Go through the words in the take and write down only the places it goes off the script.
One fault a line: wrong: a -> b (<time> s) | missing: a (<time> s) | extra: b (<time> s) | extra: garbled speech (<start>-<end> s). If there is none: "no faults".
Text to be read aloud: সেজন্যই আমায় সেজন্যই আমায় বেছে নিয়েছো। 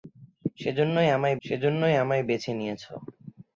no faults